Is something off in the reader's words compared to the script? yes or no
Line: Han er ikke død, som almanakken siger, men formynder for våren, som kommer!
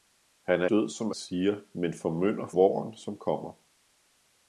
yes